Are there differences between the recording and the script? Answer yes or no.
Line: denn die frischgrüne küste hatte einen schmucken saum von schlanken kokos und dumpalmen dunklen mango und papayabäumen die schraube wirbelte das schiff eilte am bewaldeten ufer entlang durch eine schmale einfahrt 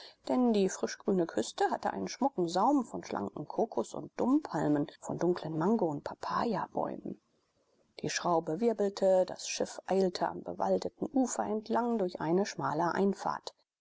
yes